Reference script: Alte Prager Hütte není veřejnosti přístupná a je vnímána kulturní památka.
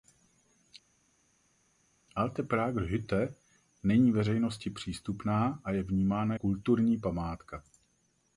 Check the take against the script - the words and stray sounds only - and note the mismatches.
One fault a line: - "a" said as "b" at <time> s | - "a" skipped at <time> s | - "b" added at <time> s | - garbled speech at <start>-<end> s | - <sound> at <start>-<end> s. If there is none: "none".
none